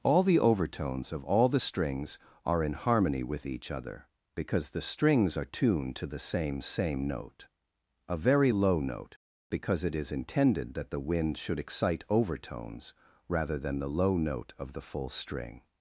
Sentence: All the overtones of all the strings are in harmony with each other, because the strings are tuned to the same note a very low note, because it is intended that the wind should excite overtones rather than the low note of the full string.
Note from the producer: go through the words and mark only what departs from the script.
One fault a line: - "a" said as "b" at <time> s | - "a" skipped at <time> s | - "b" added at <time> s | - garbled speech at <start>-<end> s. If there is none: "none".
- "same" added at 6.6 s